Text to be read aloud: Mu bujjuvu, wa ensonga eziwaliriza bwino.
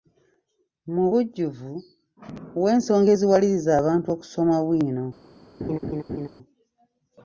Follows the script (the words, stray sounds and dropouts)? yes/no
no